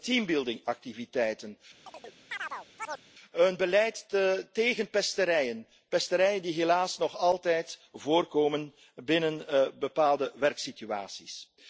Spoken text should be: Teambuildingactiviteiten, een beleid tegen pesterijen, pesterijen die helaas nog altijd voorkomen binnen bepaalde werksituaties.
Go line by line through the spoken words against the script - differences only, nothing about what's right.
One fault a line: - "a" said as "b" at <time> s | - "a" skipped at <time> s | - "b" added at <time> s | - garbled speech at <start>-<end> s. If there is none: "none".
none